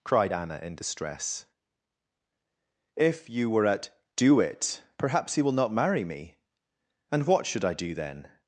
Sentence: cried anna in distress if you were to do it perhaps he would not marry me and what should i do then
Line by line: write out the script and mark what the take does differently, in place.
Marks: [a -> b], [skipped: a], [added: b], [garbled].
cried anna in distress if you were [to -> at] do it perhaps he [would -> will] not marry me and what should i do then